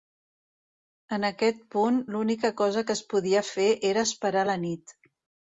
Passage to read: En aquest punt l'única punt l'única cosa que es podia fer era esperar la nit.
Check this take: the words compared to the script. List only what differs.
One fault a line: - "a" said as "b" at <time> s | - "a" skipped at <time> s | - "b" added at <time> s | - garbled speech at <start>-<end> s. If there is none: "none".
- "punt l'única" skipped at 2.5 s